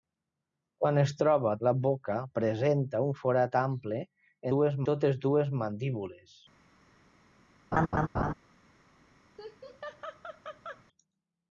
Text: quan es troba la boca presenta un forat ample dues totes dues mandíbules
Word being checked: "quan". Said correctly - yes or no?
yes